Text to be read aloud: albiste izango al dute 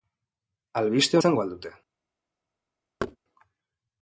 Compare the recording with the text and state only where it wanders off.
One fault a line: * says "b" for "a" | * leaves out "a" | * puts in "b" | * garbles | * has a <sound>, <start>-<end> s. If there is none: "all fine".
* has a thud, 3.0-3.2 s